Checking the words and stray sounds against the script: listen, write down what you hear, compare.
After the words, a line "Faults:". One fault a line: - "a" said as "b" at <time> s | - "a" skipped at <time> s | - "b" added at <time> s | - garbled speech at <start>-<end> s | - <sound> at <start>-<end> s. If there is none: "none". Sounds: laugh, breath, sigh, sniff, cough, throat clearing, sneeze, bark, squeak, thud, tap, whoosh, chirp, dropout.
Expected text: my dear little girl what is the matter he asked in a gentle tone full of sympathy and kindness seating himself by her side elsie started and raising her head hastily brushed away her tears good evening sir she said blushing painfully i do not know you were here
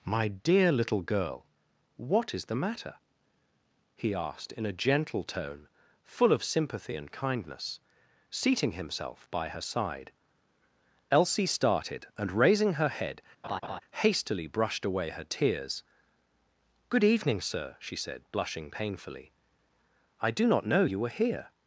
my dear little girl what is the matter he asked in a gentle tone full of sympathy and kindness seating himself by her side elsie started and raising her head hastily brushed away her tears good evening sir she said blushing painfully i do not know you were here
Faults:
- laugh at 13.4-13.8 s